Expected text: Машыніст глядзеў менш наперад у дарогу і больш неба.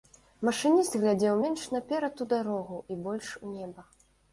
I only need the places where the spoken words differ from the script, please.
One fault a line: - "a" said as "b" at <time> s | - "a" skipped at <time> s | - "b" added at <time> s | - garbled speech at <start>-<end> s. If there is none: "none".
- "у" added at 3.5 s